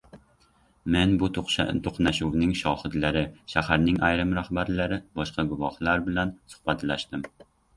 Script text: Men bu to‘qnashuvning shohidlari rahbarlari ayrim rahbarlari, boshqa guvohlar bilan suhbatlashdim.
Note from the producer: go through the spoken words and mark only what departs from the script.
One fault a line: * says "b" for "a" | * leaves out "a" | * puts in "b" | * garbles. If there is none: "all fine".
* says "shaharning" for "rahbarlari"